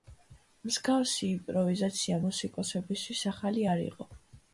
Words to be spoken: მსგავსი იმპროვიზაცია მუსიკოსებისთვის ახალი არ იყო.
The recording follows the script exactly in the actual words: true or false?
true